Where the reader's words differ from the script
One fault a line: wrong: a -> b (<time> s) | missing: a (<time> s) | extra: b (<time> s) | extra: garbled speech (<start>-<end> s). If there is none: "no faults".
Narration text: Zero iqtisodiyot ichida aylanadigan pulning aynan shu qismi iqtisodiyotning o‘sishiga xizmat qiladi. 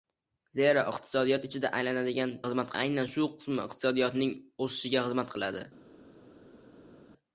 wrong: pulning -> xizmat (2.5 s)